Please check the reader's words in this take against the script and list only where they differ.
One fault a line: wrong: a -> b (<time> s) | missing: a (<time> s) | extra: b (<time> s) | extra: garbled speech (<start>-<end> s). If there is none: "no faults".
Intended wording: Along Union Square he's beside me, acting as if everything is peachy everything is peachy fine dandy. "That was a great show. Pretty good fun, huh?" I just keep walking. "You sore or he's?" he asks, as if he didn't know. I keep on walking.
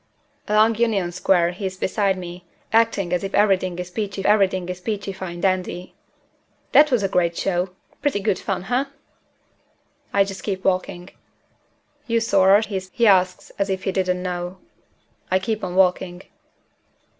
no faults